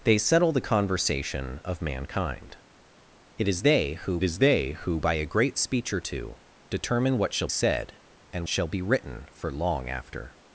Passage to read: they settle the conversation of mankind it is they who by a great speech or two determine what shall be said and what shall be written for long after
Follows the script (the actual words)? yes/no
no